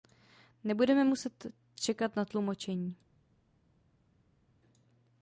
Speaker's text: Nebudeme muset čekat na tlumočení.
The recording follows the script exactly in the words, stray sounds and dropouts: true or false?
true